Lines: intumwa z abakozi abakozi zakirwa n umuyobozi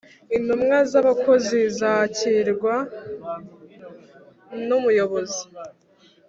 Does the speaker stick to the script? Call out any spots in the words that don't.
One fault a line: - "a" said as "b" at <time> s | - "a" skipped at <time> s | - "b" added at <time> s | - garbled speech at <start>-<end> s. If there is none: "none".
- "abakozi" skipped at 1.6 s